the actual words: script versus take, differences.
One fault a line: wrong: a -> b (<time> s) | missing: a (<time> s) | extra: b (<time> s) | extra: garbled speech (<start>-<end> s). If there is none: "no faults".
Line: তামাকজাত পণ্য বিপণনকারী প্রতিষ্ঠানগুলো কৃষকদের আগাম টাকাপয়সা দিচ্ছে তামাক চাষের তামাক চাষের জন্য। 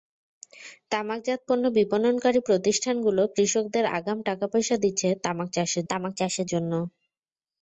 no faults